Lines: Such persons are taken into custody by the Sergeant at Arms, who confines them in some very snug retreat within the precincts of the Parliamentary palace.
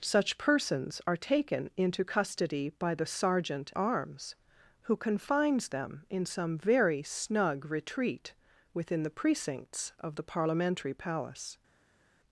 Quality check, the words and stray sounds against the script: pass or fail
fail